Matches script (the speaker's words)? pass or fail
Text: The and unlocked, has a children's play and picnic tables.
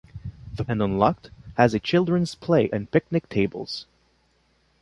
pass